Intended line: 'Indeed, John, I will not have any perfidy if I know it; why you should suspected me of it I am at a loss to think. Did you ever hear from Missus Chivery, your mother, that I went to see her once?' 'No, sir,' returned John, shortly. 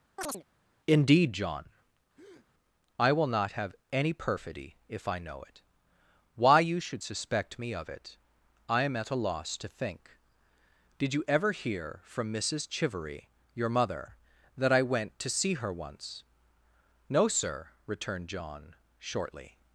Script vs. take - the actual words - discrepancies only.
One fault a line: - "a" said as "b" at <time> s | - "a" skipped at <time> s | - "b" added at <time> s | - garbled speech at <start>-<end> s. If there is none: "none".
- "suspected" said as "suspect" at 7.0 s